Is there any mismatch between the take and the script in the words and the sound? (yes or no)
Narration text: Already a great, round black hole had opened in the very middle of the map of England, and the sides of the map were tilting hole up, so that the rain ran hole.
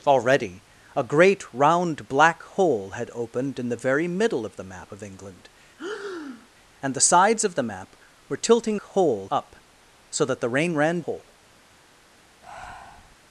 yes